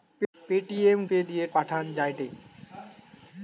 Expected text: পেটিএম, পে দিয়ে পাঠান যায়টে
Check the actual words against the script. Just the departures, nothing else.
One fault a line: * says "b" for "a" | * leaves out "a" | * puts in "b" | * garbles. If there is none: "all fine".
all fine